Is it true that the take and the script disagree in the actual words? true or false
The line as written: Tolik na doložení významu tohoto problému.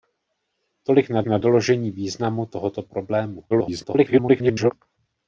true